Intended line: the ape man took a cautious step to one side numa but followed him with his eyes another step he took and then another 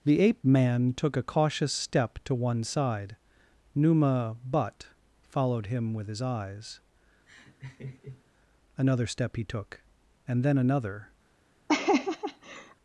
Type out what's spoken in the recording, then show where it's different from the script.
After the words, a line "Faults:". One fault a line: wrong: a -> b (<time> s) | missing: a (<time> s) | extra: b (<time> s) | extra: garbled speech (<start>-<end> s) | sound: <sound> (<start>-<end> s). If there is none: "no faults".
the ape man took a cautious step to one side numa but followed him with his eyes another step he took and then another
Faults:
sound: laugh (7.3-8.2 s)
sound: laugh (11.7-12.8 s)